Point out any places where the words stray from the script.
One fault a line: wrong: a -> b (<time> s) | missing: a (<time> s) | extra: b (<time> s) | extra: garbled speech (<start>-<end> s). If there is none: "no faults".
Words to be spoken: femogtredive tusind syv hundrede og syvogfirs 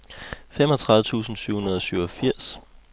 no faults